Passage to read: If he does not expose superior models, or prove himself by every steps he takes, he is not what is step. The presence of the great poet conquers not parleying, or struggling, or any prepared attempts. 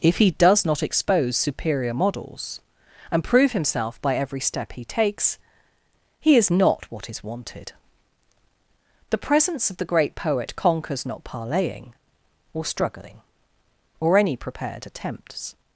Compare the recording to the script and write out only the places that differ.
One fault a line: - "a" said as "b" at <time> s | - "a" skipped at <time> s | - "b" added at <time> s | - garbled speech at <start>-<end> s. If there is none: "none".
- "or" said as "and" at 3.1 s
- "steps" said as "step" at 4.4 s
- "step" said as "wanted" at 7.2 s